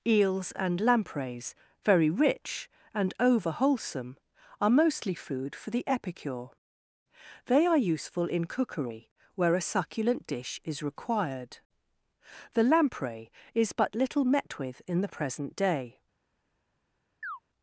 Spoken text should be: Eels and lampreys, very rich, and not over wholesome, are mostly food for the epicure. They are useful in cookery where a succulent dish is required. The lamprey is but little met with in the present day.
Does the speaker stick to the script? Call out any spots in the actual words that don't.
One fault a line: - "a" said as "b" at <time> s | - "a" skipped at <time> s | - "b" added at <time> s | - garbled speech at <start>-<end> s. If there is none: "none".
- "not" skipped at 3.1 s